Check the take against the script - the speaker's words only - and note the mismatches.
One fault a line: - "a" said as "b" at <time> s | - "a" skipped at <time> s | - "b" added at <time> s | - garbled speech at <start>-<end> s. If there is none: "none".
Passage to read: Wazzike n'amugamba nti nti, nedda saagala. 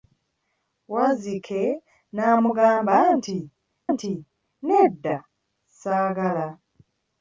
none